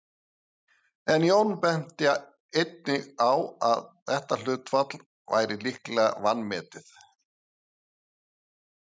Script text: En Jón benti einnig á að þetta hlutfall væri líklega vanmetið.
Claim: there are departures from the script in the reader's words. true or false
false